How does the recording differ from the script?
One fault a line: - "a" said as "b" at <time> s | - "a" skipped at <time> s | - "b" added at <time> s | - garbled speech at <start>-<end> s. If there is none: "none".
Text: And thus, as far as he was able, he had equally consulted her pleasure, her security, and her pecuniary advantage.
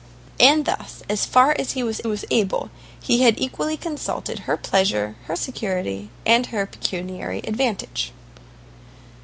- "was" added at 2.1 s